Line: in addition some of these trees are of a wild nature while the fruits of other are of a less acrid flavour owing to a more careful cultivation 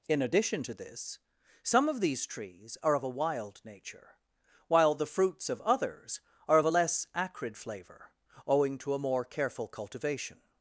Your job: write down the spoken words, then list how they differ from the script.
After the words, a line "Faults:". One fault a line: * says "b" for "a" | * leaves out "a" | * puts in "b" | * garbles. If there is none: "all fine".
in addition to this some of these trees are of a wild nature while the fruits of others are of a less acrid flavour owing to a more careful cultivation
Faults:
* puts in "to this"
* says "others" for "other"